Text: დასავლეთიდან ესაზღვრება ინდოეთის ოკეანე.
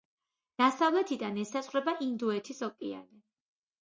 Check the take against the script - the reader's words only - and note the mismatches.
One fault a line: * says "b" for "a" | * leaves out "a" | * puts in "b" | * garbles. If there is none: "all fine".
all fine